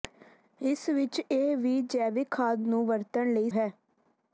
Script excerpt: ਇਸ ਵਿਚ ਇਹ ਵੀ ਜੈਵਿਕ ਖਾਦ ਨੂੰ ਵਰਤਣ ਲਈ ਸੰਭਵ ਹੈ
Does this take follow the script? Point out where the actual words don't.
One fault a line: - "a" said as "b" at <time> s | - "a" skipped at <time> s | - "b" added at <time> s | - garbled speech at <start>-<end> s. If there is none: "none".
- "ਸੰਭਵ" skipped at 3.5 s